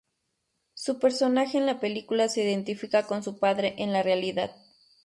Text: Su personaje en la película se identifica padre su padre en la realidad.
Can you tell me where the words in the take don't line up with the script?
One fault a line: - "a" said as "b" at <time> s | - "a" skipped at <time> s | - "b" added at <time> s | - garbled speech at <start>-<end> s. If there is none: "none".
- "padre" said as "con" at 3.0 s